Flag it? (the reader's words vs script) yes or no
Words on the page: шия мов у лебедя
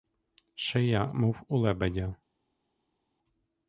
no